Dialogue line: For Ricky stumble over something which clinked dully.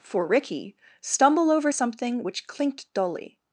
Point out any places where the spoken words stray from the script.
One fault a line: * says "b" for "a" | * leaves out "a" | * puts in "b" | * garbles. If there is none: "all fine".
all fine